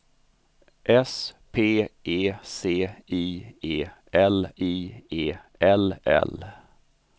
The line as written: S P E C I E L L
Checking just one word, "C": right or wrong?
right